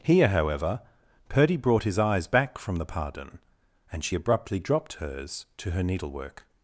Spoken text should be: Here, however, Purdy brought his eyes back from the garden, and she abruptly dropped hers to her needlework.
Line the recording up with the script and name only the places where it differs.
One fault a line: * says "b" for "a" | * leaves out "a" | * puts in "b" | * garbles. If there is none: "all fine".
* says "pardon" for "garden"